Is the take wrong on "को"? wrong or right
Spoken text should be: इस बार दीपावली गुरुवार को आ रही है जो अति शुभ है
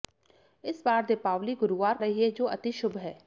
wrong